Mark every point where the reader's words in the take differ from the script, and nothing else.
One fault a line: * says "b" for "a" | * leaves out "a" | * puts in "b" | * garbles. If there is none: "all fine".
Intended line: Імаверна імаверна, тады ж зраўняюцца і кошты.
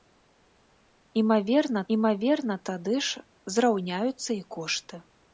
all fine